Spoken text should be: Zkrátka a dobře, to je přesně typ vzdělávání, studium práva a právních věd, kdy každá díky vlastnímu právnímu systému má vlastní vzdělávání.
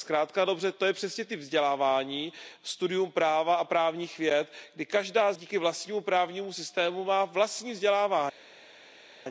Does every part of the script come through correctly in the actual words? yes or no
yes